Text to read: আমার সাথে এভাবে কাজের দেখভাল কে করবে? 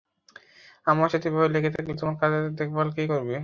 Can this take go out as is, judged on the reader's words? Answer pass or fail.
fail